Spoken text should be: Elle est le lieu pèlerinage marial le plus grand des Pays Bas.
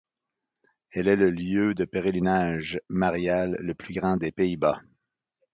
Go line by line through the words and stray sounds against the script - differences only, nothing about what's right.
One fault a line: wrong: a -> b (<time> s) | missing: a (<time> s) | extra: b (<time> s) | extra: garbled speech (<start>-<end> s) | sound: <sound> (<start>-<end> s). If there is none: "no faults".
extra: de (1.8 s)